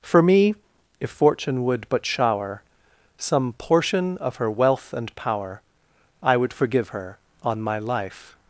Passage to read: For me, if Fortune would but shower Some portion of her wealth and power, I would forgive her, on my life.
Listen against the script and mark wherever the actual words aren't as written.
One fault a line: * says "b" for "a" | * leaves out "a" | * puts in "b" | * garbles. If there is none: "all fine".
all fine